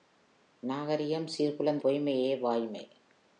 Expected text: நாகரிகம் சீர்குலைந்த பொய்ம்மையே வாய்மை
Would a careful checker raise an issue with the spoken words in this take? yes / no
no